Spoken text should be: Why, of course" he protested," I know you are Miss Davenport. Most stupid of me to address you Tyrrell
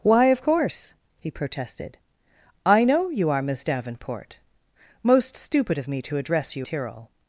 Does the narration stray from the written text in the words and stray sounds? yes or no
no